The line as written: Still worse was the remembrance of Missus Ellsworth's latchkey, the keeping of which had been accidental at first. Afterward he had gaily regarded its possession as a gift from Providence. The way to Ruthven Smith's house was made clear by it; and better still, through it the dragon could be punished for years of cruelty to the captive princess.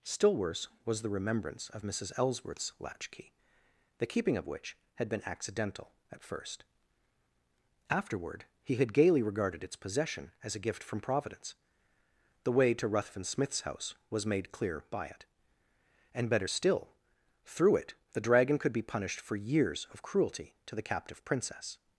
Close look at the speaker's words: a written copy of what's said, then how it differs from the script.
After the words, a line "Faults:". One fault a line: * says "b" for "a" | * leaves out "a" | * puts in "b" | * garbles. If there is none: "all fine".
Still worse was the remembrance of Missus Ellsworth's latchkey, the keeping of which had been accidental at first. Afterward he had gaily regarded its possession as a gift from Providence. The way to Ruthven Smith's house was made clear by it; and better still, through it the dragon could be punished for years of cruelty to the captive princess.
Faults:
all fine